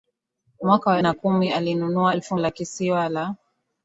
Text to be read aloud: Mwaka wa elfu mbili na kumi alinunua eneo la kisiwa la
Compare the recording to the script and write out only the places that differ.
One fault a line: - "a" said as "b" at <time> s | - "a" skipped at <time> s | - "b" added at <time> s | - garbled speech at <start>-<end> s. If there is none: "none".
- "elfu mbili" skipped at 1.0 s
- "eneo" said as "elfu" at 2.1 s